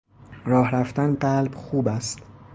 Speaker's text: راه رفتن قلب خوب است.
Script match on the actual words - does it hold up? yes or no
yes